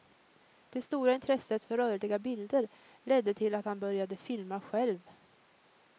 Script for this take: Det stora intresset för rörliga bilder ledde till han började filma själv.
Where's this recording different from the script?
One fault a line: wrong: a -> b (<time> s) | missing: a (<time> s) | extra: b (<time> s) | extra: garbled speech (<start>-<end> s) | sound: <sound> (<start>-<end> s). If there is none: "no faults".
extra: att (3.5 s)